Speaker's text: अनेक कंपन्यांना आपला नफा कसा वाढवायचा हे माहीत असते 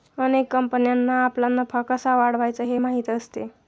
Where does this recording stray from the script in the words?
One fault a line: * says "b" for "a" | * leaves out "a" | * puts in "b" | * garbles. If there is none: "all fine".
all fine